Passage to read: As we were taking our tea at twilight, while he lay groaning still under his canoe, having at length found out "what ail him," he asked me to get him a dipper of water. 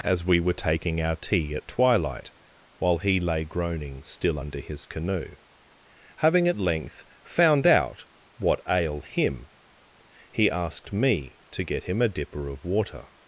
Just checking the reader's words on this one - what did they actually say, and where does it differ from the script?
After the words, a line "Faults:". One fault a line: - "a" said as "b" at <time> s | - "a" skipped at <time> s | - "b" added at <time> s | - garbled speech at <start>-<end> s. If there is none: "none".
As we were taking our tea at twilight, while he lay groaning still under his canoe, having at length found out "what ail him," he asked me to get him a dipper of water.
Faults:
none